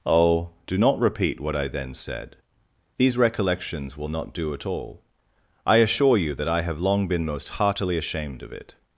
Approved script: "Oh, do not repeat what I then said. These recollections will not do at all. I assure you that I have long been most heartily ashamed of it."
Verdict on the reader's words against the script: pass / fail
pass